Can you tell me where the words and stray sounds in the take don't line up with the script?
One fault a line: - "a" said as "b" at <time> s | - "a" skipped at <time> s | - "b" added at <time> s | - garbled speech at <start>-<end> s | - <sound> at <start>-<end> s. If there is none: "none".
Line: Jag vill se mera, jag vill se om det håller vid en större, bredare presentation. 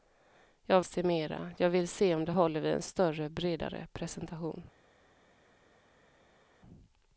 - "vill" skipped at 0.8 s